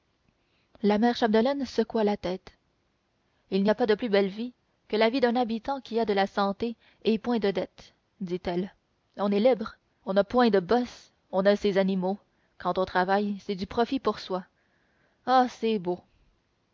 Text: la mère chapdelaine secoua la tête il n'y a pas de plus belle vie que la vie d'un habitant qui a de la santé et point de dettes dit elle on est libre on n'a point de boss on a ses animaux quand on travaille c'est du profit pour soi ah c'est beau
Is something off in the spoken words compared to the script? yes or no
no